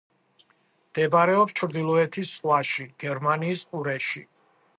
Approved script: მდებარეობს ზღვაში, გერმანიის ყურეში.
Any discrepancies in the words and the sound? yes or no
yes